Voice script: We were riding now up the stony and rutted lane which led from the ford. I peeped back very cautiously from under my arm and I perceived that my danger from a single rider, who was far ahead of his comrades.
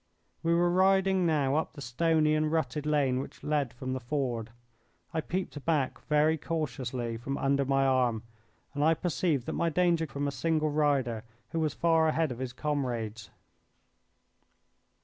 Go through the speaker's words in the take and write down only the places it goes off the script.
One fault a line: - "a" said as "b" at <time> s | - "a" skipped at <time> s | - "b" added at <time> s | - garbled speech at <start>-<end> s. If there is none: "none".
none